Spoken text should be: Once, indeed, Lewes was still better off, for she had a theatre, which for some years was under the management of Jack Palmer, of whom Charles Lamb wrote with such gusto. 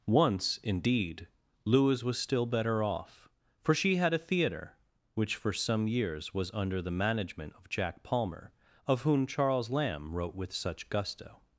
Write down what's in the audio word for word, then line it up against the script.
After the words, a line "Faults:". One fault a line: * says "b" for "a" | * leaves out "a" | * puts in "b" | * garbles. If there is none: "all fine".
Once, indeed, Lewes was still better off, for she had a theatre, which for some years was under the management of Jack Palmer, of whom Charles Lamb wrote with such gusto.
Faults:
all fine